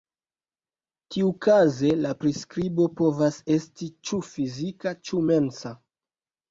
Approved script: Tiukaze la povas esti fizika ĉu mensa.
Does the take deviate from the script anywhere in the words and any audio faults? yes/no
yes